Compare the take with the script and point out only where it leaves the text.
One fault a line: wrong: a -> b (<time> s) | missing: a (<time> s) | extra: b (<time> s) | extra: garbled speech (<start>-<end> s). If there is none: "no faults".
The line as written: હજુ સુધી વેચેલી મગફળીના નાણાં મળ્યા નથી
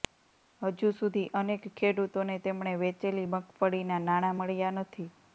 extra: અનેક ખેડૂતોને તેમણે (1.3 s)